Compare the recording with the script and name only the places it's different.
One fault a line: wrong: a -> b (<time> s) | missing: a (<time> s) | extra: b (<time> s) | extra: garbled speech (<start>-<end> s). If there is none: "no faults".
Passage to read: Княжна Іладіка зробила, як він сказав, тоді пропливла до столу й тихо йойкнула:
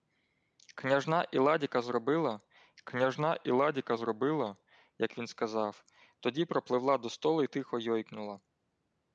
extra: княжна Іладіка зробила (2.8 s)